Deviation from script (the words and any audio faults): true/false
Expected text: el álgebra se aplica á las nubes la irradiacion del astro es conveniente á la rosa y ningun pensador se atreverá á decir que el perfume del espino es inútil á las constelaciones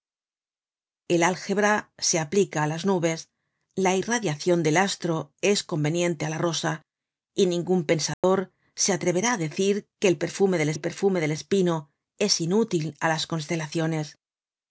true